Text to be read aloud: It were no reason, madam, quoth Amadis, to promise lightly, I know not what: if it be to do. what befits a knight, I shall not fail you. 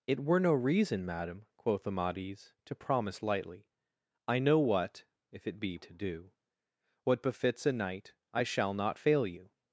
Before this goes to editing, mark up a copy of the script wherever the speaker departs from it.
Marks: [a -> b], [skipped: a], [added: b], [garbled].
It were no reason, madam, quoth Amadis, to promise lightly, I know [skipped: not] what: if it be to do. what befits a knight, I shall not fail you.